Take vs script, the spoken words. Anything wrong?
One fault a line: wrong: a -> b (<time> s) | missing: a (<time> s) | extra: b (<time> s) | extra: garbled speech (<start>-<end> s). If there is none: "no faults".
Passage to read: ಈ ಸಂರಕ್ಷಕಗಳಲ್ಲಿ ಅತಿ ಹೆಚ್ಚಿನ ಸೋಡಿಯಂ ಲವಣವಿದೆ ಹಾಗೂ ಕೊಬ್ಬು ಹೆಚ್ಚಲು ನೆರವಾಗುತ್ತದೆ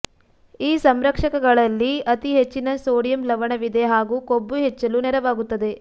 no faults